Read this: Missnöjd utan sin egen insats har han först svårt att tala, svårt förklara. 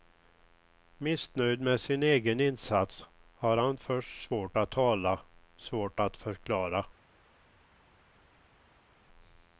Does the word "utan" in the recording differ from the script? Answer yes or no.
yes